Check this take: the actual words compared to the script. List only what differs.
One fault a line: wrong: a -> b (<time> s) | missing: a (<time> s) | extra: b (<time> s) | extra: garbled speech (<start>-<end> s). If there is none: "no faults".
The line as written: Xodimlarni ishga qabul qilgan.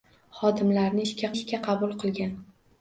extra: ishga (1.4 s)